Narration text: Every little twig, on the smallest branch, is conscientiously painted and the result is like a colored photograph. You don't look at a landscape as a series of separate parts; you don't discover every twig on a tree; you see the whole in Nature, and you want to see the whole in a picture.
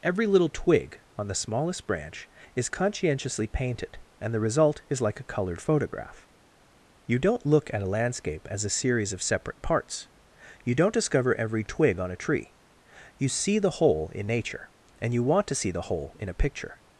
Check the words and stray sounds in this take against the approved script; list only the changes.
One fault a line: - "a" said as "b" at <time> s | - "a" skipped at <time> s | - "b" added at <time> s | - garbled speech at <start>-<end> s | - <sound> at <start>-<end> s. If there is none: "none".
none